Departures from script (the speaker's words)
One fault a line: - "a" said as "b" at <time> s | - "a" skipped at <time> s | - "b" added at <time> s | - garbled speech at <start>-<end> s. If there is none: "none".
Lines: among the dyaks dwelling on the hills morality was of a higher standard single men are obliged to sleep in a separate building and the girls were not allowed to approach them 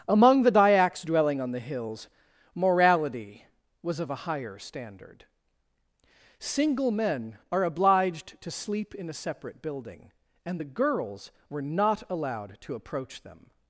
none